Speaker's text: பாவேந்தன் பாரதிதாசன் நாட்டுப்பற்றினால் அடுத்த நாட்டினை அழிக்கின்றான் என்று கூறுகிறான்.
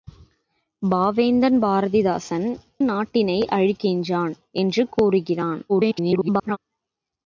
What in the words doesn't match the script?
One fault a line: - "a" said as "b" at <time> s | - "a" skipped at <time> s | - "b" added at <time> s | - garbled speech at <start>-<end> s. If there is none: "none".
- "நாட்டுப்பற்றினால் அடுத்த" skipped at 2.5 s
- garbled speech at 5.7-6.6 s